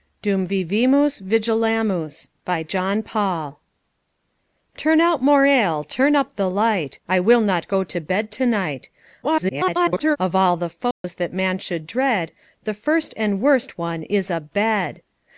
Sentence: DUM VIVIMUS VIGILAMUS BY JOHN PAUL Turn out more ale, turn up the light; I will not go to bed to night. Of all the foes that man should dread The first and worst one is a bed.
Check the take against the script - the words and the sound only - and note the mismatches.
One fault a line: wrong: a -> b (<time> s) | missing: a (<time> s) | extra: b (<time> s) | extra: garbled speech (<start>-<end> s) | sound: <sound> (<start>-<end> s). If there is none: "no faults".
extra: garbled speech (9.2-10.2 s)
sound: dropout (10.9-11.0 s)